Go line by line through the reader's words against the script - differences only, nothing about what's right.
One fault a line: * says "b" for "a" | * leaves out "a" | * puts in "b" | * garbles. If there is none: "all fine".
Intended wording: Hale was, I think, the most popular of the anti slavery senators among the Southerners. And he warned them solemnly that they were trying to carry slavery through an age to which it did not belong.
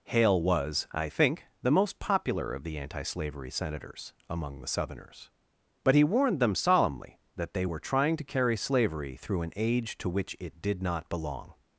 * says "But" for "And"